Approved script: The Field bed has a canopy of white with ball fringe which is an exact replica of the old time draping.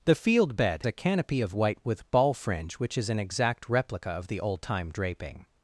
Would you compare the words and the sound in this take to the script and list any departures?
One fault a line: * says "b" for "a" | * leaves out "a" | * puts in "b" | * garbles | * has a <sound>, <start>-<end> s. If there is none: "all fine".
* leaves out "has"